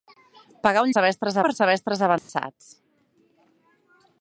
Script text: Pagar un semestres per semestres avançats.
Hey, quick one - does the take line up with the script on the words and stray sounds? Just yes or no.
no